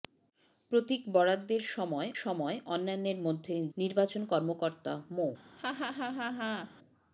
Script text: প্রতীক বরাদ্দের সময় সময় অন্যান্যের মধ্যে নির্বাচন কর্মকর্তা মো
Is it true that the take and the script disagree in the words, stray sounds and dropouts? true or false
true